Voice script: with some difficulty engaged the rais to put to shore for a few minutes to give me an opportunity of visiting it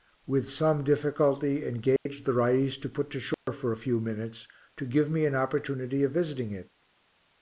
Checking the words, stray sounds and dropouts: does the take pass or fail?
fail